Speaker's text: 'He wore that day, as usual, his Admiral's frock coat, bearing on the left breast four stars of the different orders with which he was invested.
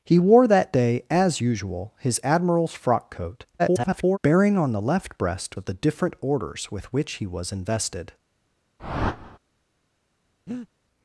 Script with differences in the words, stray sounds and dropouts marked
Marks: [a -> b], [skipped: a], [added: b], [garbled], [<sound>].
'He wore that day, as usual, his Admiral's frock coat, [garbled] bearing on the left breast [skipped: four stars] of the different orders with which he was invested. [whoosh] [breath]